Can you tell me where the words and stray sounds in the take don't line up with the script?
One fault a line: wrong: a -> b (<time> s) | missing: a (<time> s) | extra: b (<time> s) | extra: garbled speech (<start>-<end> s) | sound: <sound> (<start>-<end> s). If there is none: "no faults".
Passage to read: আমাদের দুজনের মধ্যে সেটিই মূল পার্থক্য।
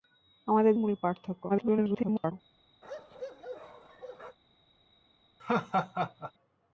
missing: দুজনের মধ্যে সেটিই (0.7 s)
extra: garbled speech (1.5-2.3 s)
sound: bark (2.8-4.4 s)
sound: laugh (5.4-6.3 s)